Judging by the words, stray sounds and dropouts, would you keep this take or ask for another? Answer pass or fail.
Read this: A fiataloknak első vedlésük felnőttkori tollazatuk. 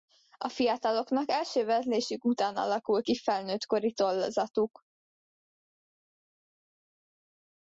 fail